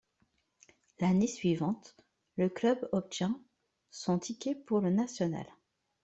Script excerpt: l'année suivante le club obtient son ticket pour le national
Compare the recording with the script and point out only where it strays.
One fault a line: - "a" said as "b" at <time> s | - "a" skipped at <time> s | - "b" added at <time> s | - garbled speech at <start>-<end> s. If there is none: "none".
none